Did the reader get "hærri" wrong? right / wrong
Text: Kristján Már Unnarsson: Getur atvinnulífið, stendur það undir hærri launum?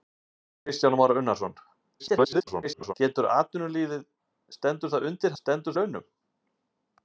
wrong